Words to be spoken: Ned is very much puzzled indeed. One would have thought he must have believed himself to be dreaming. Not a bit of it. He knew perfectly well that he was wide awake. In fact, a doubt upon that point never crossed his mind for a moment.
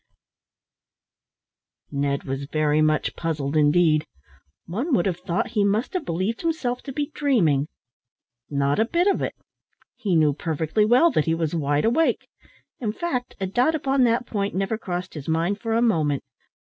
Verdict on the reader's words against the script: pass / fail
fail